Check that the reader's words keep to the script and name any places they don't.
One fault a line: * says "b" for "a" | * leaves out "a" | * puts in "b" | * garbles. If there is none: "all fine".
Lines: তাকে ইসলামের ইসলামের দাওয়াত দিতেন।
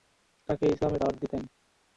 * leaves out "ইসলামের"